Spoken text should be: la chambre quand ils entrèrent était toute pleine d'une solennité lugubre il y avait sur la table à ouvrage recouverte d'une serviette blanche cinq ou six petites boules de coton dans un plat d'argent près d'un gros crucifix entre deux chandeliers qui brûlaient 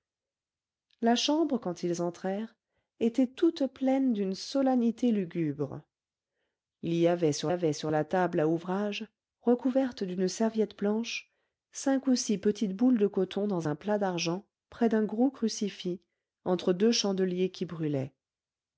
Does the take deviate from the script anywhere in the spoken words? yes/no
yes